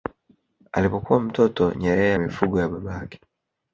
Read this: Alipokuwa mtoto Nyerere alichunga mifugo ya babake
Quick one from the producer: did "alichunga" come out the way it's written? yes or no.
no